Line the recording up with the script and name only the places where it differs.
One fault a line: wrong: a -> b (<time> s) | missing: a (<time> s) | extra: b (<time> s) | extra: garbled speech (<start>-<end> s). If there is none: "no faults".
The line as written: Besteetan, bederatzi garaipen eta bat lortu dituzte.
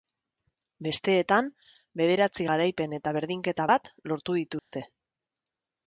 extra: berdinketa (3.2 s)